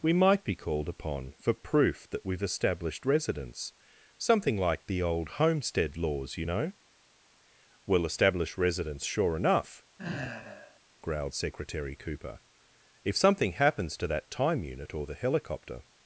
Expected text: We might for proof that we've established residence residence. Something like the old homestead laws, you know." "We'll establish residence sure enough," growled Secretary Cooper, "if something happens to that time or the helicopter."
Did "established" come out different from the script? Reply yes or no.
no